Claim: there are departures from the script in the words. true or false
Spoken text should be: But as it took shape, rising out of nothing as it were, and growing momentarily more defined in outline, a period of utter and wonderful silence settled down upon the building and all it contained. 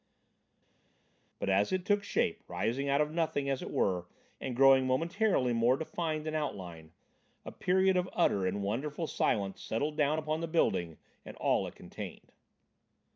false